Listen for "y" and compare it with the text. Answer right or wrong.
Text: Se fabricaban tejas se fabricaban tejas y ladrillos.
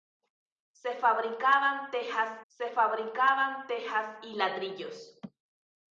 right